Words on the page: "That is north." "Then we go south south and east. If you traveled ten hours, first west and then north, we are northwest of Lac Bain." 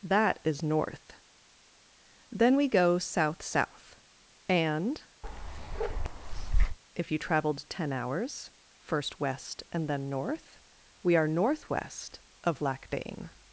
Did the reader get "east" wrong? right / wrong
wrong